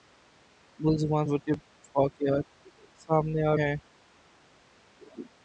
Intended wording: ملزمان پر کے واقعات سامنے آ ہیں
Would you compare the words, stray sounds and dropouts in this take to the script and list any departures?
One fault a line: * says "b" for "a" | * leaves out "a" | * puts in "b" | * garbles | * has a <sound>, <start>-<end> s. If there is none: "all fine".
all fine